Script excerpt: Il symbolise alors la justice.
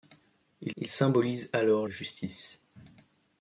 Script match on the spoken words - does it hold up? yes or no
no